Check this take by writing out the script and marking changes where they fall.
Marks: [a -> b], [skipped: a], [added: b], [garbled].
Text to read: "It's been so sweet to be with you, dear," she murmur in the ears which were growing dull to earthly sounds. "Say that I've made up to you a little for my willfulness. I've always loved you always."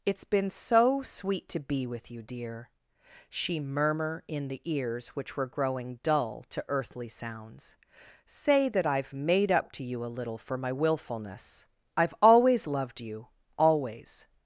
"It's been so sweet to be with you, dear," she murmur in the ears which were growing dull to earthly sounds. "Say that I've made up to you a little for my willfulness. I've always loved you always."